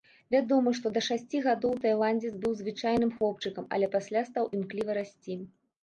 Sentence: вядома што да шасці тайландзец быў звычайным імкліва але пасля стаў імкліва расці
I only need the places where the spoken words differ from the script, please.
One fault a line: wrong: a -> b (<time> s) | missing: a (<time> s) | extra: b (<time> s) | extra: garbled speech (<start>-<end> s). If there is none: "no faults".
extra: гадоў (1.5 s)
wrong: імкліва -> хлопчыкам (3.2 s)